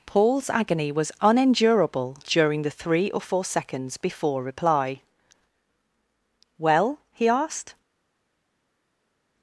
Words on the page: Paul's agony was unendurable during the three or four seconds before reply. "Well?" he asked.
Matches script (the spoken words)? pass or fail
pass